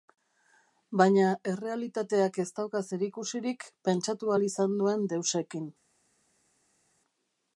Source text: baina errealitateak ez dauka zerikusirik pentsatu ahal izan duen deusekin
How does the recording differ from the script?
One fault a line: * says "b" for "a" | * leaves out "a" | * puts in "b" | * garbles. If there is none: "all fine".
all fine